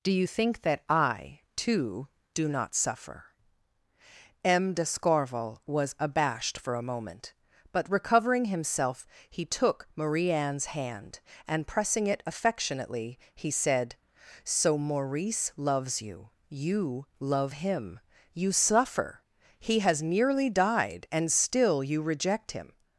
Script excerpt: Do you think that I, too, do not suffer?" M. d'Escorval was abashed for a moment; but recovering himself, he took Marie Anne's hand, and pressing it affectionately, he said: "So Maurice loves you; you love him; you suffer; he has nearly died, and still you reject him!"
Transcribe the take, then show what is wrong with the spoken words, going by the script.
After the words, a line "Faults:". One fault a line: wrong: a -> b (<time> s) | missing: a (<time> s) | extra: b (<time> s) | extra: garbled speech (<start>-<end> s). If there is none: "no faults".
Do you think that I, too, do not suffer?" M. d'Escorval was abashed for a moment; but recovering himself, he took Marie Anne's hand, and pressing it affectionately, he said: "So Maurice loves you; you love him; you suffer; he has nearly died, and still you reject him!"
Faults:
no faults